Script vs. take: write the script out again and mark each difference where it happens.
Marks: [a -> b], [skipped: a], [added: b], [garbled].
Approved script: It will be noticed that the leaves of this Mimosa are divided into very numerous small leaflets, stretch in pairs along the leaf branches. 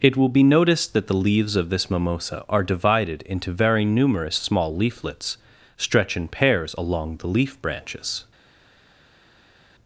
It will be noticed that the leaves of this Mimosa are divided into very numerous small leaflets, stretch in pairs along the leaf branches.